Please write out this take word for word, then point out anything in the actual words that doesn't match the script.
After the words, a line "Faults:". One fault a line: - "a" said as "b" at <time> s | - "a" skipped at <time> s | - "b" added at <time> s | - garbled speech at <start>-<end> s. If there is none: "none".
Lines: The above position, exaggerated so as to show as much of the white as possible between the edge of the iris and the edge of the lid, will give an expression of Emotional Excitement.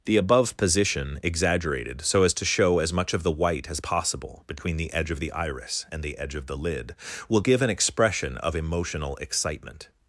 The above position, exaggerated so as to show as much of the white as possible between the edge of the iris and the edge of the lid, will give an expression of Emotional Excitement.
Faults:
none